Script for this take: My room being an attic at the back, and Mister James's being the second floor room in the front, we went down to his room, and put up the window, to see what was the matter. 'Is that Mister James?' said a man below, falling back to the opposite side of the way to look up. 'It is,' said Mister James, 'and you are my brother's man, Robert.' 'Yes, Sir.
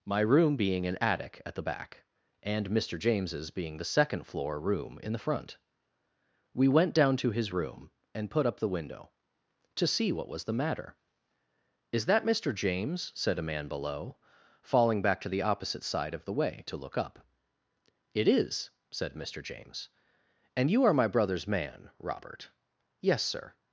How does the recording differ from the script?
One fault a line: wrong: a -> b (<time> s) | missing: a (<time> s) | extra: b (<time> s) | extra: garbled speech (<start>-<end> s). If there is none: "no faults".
no faults